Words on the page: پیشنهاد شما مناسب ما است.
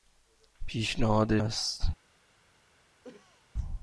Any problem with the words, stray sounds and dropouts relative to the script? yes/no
yes